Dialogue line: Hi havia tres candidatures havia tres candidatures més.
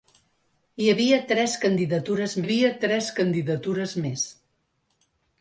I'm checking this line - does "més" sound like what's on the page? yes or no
yes